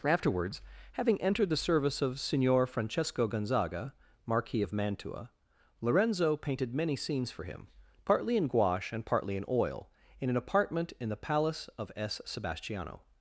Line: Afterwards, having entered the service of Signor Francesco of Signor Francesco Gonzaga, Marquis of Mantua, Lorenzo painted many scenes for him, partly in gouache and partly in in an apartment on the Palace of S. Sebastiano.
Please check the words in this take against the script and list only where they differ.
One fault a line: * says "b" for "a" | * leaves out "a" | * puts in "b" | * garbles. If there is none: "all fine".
* leaves out "of Signor Francesco"
* puts in "oil"
* says "in" for "on"